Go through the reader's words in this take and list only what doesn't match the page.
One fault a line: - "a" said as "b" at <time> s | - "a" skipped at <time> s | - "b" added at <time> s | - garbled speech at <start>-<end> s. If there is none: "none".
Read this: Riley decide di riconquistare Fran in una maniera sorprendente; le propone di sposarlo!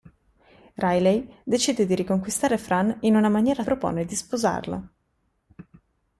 - "sorprendente le" skipped at 3.6 s